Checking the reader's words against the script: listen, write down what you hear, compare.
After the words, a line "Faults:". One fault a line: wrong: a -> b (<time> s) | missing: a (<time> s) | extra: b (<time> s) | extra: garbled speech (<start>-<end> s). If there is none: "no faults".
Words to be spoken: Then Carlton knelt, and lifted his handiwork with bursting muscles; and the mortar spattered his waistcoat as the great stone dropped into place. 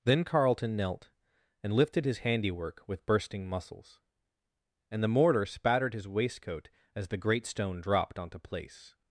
Then Carlton knelt, and lifted his handiwork with bursting muscles; and the mortar spattered his waistcoat as the great stone dropped onto place.
Faults:
wrong: into -> onto (8.2 s)